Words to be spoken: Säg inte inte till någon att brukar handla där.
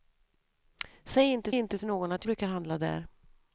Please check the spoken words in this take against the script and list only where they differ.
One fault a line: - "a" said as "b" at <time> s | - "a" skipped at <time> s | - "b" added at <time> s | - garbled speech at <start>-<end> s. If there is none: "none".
none